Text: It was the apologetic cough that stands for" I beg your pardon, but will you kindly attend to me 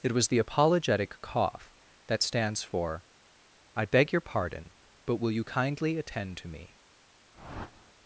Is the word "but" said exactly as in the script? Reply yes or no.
yes